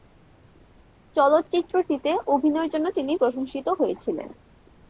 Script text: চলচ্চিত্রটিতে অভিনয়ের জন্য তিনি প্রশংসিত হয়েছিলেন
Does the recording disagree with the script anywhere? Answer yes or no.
no